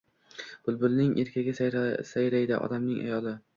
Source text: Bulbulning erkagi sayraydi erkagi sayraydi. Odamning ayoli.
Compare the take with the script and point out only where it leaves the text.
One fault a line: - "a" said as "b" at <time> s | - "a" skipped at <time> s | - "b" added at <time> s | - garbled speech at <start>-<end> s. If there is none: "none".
- "erkagi sayraydi" skipped at 2.6 s